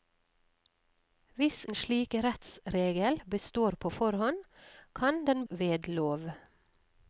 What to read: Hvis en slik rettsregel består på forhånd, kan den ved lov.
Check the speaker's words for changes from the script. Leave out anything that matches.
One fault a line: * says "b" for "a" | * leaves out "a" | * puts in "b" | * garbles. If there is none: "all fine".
all fine